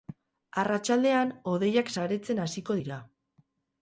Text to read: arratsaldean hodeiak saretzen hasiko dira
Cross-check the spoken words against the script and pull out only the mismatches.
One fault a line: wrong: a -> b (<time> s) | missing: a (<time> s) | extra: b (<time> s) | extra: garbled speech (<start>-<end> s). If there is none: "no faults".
no faults